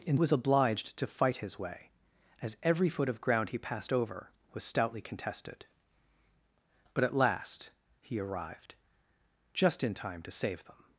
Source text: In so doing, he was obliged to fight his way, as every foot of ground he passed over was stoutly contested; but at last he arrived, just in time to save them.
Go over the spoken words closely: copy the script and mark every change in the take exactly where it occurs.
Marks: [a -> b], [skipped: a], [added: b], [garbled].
In [skipped: so doing, he] was obliged to fight his way, as every foot of ground he passed over was stoutly contested; but at last he arrived, just in time to save them.